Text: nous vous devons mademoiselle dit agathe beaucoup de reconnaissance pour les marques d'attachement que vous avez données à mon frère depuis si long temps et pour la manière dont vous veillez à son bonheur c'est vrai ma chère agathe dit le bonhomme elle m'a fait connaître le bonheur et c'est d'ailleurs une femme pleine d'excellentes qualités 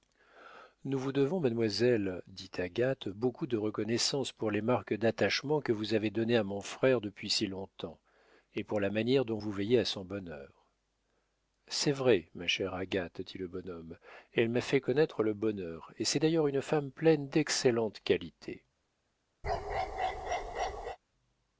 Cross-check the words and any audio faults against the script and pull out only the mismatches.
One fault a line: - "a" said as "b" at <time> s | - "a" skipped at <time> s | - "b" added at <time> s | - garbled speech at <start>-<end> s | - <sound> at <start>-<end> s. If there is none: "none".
- bark at 19.4-21.0 s